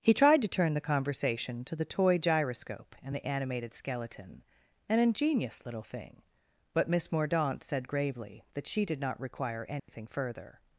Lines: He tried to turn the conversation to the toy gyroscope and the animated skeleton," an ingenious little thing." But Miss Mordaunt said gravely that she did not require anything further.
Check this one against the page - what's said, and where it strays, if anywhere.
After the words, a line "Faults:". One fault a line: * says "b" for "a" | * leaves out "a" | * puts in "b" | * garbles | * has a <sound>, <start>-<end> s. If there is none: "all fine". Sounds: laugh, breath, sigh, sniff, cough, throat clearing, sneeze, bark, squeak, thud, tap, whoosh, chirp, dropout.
He tried to turn the conversation to the toy gyroscope and the animated skeleton," an ingenious little thing." But Miss Mordaunt said gravely that she did not require anything further.
Faults:
* has a dropout, 9.8-9.9 s